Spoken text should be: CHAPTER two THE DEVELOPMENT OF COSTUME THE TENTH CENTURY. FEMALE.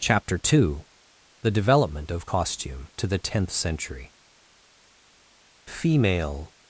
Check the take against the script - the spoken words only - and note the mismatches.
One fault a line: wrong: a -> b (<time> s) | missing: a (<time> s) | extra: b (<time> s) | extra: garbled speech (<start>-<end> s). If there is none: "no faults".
extra: TO (3.0 s)